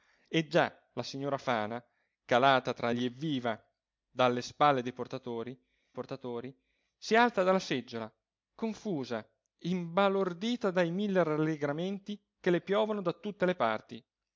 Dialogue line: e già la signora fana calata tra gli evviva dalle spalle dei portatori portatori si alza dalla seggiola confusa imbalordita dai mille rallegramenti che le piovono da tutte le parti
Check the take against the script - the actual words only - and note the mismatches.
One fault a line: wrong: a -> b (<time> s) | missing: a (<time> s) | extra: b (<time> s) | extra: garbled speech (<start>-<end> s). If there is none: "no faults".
no faults